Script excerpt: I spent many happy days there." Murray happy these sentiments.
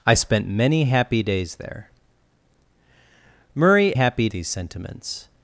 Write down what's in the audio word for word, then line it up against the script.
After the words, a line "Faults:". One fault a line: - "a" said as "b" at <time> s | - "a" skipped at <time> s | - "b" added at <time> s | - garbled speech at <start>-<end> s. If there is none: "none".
I spent many happy days there." Murray happy these sentiments.
Faults:
none